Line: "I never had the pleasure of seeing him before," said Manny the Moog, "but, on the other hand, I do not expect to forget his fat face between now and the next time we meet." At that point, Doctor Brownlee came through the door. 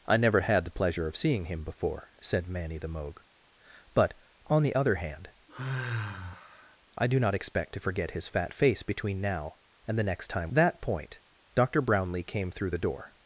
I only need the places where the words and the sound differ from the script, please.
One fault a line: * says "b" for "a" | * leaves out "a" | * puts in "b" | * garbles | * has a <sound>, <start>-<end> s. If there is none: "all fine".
* has a sigh, 5.5-6.8 s
* leaves out "we meet At"